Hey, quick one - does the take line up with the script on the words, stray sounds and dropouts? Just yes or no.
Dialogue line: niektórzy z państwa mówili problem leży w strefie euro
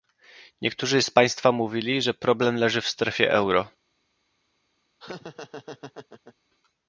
no